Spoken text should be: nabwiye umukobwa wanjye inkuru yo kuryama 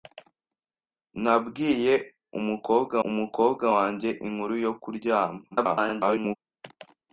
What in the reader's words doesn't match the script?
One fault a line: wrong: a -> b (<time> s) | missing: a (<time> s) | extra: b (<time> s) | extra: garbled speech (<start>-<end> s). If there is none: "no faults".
extra: umukobwa (3.1 s)
extra: garbled speech (5.5-6.4 s)